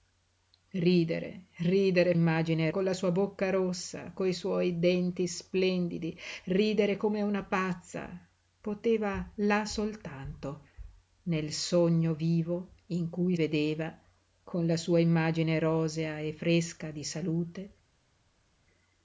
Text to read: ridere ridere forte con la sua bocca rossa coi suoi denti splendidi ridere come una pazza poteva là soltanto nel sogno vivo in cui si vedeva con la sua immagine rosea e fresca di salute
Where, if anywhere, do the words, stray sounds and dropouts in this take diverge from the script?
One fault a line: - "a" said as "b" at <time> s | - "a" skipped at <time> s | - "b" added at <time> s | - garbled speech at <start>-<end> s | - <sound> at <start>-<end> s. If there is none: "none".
- "forte" said as "immagine" at 2.1 s
- "si" skipped at 13.4 s